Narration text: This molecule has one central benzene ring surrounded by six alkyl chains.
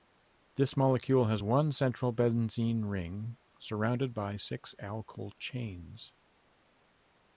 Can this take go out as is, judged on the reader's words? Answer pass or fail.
pass